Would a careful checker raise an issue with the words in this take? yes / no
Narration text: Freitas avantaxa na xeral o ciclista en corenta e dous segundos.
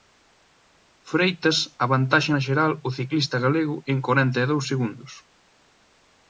yes